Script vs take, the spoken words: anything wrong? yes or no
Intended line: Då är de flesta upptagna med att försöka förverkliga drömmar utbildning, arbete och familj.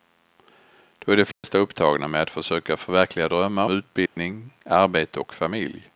no